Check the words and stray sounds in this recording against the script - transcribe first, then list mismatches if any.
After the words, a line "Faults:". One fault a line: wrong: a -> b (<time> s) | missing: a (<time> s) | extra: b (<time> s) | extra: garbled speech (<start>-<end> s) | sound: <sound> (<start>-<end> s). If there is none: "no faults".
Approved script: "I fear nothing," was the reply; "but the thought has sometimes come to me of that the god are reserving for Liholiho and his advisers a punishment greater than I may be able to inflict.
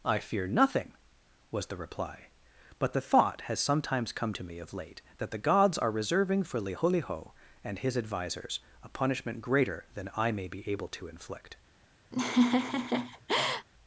"I fear nothing," was the reply; "but the thought has sometimes come to me of late that the gods are reserving for Liholiho and his advisers a punishment greater than I may be able to inflict.
Faults:
extra: late (4.7 s)
wrong: god -> gods (5.4 s)
sound: laugh (12.1-13.7 s)